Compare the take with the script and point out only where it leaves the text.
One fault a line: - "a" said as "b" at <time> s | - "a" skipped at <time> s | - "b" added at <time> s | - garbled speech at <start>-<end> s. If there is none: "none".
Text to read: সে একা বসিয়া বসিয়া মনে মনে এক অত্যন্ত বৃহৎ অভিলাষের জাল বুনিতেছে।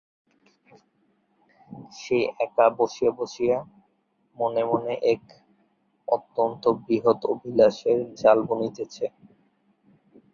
none